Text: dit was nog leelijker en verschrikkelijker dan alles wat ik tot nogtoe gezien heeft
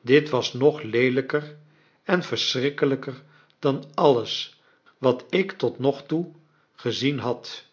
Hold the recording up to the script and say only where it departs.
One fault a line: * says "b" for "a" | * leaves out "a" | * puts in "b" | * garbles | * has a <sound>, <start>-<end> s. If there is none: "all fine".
* says "had" for "heeft"